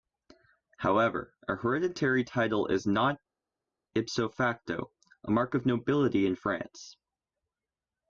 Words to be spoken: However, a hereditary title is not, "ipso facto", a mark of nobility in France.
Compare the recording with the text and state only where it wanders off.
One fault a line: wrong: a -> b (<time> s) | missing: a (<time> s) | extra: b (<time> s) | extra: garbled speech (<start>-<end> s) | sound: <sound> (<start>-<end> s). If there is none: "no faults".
no faults